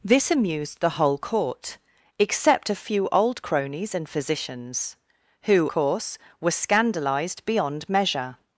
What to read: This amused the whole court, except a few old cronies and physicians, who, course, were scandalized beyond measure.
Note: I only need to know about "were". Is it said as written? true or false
true